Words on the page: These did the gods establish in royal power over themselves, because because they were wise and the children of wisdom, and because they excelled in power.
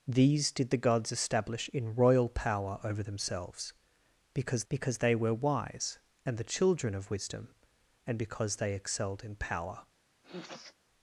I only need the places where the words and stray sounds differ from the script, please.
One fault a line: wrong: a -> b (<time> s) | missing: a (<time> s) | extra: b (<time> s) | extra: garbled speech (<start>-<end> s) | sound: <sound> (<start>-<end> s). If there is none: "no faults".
sound: sniff (10.2-10.8 s)